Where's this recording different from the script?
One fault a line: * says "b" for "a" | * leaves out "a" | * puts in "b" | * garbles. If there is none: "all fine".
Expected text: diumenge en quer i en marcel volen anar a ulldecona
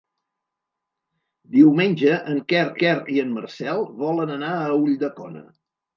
* puts in "quer"